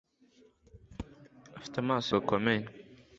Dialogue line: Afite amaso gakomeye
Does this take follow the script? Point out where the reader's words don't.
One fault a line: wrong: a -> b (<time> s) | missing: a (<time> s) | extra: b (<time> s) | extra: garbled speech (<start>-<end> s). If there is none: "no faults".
no faults